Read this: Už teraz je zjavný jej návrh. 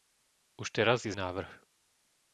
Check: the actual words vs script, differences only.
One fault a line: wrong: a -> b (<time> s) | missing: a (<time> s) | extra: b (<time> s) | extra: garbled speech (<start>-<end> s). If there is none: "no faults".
missing: zjavný (1.1 s)